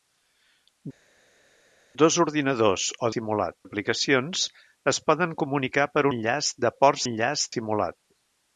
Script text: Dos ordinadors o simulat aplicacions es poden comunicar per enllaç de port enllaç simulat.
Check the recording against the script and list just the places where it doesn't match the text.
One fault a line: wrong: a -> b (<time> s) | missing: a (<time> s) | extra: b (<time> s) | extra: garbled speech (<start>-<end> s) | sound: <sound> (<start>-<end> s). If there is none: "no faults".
no faults